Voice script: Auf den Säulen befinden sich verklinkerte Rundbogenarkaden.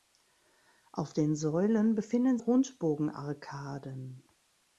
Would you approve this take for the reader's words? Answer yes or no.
no